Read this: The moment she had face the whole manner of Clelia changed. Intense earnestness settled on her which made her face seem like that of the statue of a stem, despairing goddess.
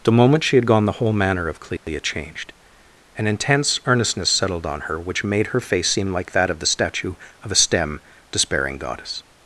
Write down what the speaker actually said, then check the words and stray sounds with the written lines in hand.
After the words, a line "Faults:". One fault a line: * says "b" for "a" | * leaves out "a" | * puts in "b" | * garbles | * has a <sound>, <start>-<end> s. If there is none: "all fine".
The moment she had gone the whole manner of Clelia changed. An intense earnestness settled on her which made her face seem like that of the statue of a stem, despairing goddess.
Faults:
* says "gone" for "face"
* has a dropout, 1.8-1.9 s
* puts in "An"